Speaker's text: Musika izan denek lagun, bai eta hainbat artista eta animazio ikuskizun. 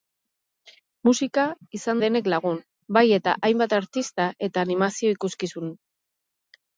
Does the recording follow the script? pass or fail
pass